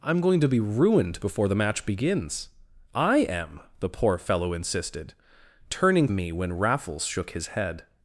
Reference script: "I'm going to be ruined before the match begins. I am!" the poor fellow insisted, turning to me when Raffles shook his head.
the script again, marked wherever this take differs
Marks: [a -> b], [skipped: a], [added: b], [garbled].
"I'm going to be ruined before the match begins. I am!" the poor fellow insisted, turning [skipped: to] me when Raffles shook his head.